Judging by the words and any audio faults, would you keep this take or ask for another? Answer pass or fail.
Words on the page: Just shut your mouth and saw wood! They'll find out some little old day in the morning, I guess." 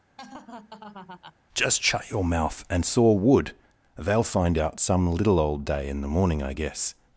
fail